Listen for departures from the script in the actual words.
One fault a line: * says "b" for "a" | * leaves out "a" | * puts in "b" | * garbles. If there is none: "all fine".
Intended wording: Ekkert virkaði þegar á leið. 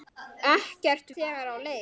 * leaves out "virkaði"